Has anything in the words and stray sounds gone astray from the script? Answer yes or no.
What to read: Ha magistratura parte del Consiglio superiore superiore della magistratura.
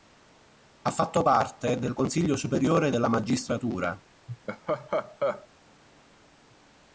yes